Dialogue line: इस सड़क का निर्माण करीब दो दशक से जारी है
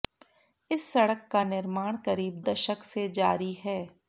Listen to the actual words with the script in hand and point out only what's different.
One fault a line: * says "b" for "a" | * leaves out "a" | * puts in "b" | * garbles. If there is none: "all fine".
* leaves out "दो"